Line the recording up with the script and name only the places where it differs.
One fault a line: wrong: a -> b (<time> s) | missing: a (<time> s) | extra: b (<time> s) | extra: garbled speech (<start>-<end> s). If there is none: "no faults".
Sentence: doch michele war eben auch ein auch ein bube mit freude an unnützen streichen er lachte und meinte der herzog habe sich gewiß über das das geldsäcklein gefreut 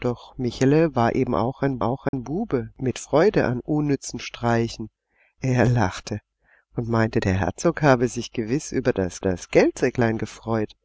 no faults